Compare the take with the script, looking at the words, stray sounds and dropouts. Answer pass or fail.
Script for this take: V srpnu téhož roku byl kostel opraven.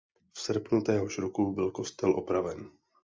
pass